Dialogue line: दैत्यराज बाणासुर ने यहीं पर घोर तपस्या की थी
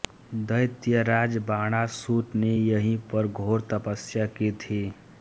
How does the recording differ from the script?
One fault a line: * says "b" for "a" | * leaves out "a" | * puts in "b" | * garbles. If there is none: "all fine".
all fine